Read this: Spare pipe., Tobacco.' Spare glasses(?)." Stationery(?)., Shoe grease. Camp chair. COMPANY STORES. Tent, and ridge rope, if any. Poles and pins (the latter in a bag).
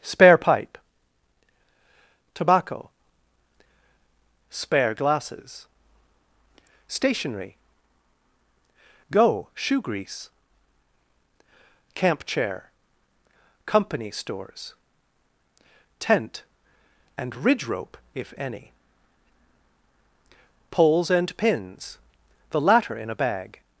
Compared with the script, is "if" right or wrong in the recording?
right